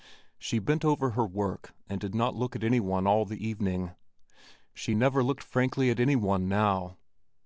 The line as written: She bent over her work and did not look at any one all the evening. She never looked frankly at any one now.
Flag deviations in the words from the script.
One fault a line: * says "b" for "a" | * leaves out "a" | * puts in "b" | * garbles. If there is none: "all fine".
all fine